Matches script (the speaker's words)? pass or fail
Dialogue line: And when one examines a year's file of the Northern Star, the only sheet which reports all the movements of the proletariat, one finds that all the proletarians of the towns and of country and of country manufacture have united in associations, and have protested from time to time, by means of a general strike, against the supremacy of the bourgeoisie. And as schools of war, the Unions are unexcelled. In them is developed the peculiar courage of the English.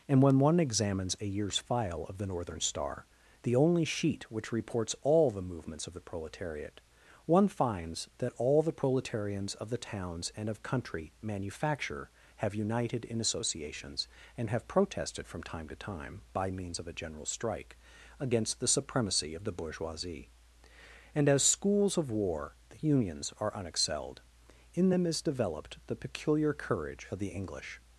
fail